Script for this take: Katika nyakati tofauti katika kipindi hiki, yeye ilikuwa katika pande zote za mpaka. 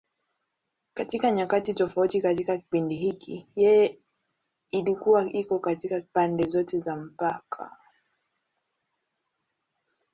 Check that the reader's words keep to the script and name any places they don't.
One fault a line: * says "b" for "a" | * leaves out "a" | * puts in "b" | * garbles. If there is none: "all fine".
* puts in "iko"